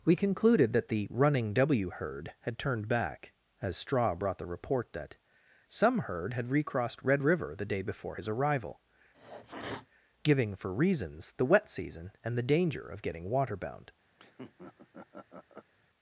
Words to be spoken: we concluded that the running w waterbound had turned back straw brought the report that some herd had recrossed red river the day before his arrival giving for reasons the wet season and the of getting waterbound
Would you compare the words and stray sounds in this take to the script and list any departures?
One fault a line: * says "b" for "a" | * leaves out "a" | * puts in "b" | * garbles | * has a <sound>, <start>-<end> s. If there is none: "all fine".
* says "herd" for "waterbound"
* puts in "as"
* has a sneeze, 9.1-9.9 s
* puts in "danger"
* has a laugh, 14.2-15.7 s